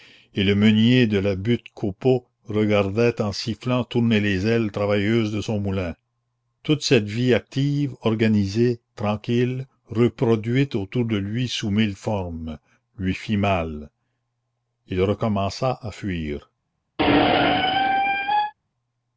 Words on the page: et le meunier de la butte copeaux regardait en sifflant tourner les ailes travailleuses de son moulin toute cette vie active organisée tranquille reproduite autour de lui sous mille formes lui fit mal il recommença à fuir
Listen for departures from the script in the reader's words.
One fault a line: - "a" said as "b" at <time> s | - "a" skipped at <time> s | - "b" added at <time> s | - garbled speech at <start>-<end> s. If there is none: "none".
none